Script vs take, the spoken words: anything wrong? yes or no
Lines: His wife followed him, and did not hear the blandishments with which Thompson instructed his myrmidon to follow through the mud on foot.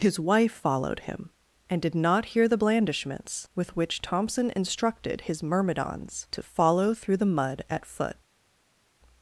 yes